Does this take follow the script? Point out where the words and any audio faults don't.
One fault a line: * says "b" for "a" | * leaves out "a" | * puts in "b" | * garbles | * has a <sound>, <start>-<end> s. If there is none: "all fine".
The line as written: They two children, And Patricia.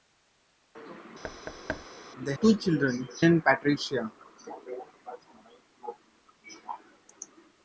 * has a thud, 1.2-1.9 s